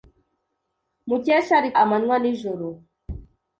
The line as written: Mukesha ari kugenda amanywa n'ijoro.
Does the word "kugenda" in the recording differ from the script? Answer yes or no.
yes